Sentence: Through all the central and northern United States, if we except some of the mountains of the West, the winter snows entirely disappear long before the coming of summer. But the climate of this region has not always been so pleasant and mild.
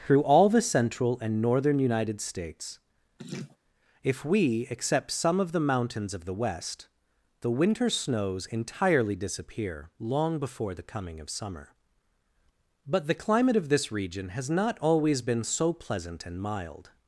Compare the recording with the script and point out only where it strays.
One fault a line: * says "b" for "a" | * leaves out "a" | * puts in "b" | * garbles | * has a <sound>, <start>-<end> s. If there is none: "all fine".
* has a laugh, 3.2-3.6 s